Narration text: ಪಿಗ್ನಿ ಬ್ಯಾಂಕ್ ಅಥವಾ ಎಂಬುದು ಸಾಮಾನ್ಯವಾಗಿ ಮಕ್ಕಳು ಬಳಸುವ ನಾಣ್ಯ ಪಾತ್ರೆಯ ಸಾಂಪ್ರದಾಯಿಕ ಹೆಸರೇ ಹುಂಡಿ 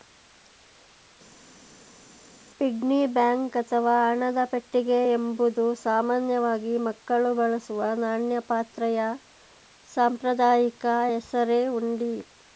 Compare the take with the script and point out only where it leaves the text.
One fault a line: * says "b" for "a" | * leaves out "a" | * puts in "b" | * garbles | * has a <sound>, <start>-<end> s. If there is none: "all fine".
* puts in "ಹಣದ ಪೆಟ್ಟಿಗೆ"